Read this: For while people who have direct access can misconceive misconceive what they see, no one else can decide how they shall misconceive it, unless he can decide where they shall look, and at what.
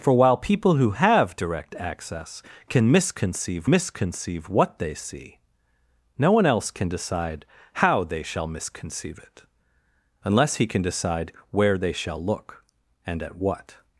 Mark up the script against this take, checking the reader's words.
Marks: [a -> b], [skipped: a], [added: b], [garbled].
For while people who have direct access can misconceive misconceive what they see, no one else can decide how they shall misconceive it, unless he can decide where they shall look, and at what.